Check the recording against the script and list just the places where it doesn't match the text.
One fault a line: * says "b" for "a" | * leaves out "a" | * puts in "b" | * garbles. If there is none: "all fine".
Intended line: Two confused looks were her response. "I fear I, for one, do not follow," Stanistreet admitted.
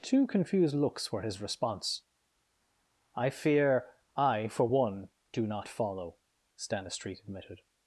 * says "his" for "her"